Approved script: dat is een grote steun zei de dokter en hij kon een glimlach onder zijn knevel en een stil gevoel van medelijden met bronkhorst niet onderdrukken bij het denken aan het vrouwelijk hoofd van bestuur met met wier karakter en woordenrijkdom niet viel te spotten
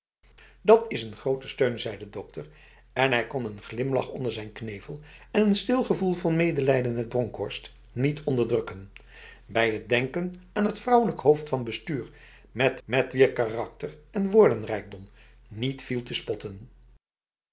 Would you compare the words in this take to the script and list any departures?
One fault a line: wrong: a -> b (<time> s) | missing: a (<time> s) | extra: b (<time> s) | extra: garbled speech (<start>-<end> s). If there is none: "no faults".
no faults